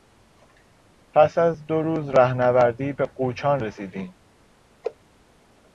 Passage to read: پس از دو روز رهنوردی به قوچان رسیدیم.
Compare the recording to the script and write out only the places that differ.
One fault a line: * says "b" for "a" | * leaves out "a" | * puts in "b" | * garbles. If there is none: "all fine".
all fine